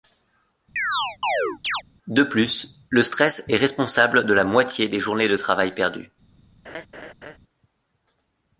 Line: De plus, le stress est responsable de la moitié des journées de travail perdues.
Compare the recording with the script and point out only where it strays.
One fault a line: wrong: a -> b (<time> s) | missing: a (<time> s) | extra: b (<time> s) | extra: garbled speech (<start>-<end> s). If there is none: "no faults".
no faults